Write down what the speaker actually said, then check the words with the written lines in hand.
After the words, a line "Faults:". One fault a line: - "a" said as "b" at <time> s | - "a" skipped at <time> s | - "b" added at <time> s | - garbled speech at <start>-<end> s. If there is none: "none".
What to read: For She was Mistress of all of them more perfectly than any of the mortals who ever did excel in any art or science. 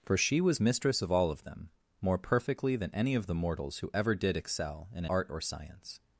For She was Mistress of all of them more perfectly than any of the mortals who ever did excel in art or science.
Faults:
- "any" skipped at 5.0 s